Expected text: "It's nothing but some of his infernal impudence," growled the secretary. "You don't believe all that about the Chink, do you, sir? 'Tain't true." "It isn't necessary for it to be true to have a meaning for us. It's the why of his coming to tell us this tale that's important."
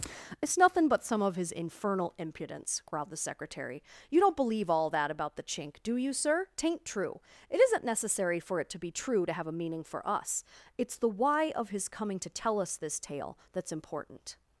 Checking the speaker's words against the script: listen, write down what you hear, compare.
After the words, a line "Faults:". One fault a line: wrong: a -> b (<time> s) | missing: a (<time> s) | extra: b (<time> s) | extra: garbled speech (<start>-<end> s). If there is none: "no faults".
"It's nothing but some of his infernal impudence," growled the secretary. "You don't believe all that about the Chink, do you, sir? 'Tain't true." "It isn't necessary for it to be true to have a meaning for us. It's the why of his coming to tell us this tale that's important."
Faults:
no faults